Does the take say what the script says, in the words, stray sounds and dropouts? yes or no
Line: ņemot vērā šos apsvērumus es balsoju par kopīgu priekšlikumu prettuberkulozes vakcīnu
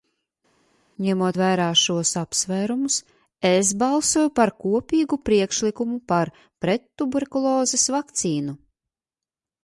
no